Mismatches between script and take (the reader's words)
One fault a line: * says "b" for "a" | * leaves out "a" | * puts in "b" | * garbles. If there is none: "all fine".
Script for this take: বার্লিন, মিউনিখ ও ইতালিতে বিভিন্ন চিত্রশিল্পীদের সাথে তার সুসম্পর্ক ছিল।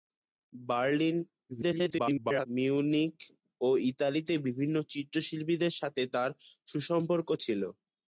* garbles